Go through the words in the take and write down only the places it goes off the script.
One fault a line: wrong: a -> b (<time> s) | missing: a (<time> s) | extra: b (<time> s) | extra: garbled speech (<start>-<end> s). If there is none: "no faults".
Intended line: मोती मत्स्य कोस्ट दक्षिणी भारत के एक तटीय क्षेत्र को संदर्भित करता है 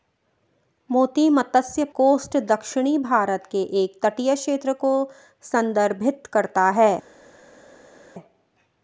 no faults